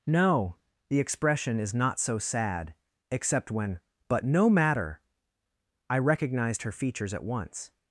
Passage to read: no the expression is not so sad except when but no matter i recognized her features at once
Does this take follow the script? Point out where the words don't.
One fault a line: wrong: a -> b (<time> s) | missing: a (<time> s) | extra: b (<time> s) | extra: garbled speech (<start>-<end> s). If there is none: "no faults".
no faults